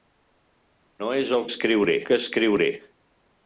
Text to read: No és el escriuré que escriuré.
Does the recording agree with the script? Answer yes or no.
yes